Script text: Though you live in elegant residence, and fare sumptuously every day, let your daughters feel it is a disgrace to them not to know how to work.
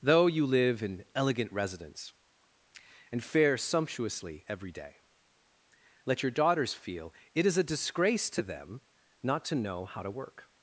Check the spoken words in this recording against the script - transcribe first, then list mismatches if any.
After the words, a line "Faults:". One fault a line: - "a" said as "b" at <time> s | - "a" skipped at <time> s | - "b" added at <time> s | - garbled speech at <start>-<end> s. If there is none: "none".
Though you live in elegant residence, and fare sumptuously every day, let your daughters feel it is a disgrace to them not to know how to work.
Faults:
none